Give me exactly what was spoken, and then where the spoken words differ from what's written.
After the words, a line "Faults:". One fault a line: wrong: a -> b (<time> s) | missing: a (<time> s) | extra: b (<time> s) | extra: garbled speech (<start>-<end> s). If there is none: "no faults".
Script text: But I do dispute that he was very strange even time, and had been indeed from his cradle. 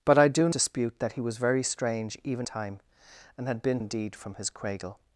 But I do dispute that he was very strange even time, and had been indeed from his cradle.
Faults:
no faults